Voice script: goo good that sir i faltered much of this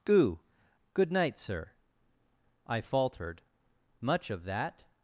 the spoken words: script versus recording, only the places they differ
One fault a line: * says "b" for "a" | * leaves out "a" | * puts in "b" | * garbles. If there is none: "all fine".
* says "night" for "that"
* says "that" for "this"